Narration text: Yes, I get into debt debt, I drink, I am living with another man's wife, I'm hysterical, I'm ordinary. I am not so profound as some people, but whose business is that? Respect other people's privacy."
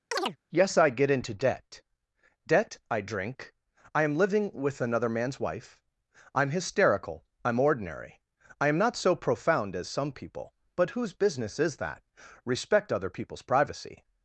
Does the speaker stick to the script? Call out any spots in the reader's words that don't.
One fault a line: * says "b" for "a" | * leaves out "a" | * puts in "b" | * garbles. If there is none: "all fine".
all fine